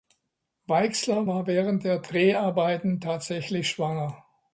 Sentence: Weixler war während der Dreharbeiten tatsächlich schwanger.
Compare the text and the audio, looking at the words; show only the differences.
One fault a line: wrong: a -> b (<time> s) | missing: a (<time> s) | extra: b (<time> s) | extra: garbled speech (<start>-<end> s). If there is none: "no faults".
no faults